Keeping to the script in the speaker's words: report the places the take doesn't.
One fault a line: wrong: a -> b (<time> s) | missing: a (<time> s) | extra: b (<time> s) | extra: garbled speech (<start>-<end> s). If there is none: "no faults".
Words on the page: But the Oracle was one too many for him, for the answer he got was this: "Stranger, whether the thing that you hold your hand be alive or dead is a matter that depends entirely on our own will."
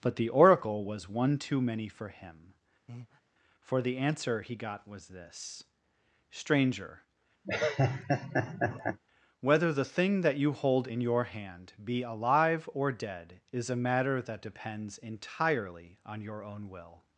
extra: in (10.8 s)
wrong: our -> your (16.2 s)